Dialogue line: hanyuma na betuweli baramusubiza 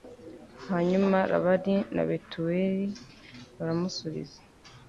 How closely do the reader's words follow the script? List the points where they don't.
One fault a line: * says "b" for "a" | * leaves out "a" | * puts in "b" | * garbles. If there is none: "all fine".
* puts in "labani"